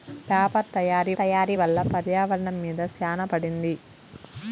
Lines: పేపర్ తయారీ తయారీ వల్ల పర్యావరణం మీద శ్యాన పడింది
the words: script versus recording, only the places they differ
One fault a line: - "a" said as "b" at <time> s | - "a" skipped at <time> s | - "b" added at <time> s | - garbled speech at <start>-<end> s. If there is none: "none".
none